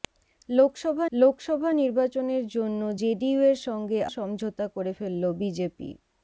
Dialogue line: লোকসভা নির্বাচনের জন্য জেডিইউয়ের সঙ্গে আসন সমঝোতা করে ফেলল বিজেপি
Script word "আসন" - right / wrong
wrong